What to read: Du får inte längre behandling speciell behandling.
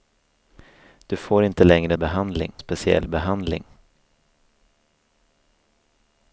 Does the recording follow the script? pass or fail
pass